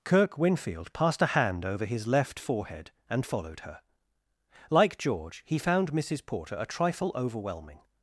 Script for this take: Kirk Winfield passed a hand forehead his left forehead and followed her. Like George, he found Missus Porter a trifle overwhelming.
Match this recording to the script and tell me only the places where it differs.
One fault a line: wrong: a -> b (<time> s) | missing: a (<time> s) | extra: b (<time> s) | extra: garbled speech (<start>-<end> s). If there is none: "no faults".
wrong: forehead -> over (1.6 s)